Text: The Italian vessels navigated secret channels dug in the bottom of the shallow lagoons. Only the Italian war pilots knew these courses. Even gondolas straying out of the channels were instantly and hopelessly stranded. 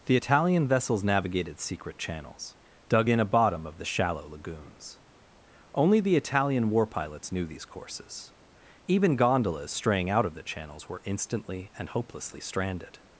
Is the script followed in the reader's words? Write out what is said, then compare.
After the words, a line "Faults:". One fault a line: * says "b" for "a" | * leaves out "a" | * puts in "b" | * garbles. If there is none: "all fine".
The Italian vessels navigated secret channels dug in a bottom of the shallow lagoons. Only the Italian war pilots knew these courses. Even gondolas straying out of the channels were instantly and hopelessly stranded.
Faults:
* says "a" for "the"